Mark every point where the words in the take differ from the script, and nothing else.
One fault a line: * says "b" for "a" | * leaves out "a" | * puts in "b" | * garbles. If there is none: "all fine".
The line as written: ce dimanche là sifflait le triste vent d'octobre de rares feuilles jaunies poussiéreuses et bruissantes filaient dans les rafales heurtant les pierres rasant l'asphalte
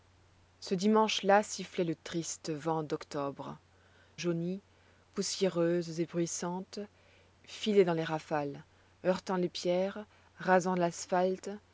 * leaves out "de rares feuilles"